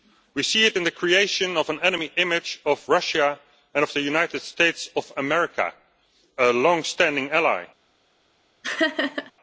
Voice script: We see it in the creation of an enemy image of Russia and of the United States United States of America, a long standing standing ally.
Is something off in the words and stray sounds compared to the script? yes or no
yes